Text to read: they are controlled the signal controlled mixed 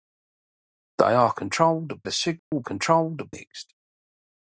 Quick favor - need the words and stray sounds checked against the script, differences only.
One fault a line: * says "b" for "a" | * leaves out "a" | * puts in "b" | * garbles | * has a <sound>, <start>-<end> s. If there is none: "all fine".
* has a dropout, 2.4-2.5 s